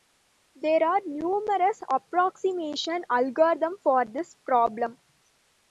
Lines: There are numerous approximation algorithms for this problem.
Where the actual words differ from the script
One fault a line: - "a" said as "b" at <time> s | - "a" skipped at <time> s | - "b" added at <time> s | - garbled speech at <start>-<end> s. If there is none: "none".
none